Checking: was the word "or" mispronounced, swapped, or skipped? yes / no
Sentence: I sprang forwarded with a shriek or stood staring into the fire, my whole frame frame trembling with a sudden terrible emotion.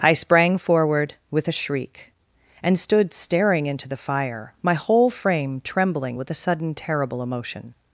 yes